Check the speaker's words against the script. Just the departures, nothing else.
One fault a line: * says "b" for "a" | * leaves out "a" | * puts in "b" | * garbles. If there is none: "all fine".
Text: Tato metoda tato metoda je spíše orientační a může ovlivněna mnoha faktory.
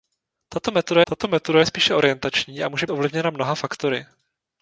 all fine